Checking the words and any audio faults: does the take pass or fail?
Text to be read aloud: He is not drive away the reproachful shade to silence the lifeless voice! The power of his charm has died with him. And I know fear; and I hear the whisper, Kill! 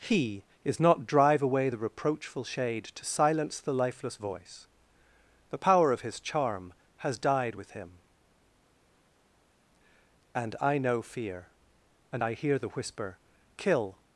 pass